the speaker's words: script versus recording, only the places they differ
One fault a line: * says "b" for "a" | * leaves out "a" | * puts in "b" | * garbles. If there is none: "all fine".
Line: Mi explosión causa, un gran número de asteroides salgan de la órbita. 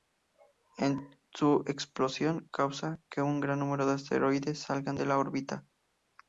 * says "Su" for "Mi"
* puts in "que"